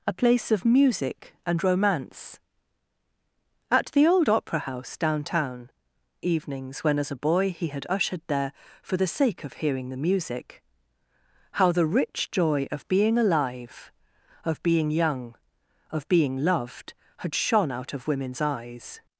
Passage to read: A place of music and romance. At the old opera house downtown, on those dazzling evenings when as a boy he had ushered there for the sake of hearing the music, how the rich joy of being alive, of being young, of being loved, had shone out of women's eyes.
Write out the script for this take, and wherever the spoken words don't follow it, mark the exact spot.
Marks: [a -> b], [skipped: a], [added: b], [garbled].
A place of music and romance. At the old opera house downtown, [skipped: on those dazzling] evenings when as a boy he had ushered there for the sake of hearing the music, how the rich joy of being alive, of being young, of being loved, had shone out of women's eyes.